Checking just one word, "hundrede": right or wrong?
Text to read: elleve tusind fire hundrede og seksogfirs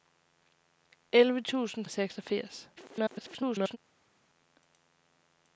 wrong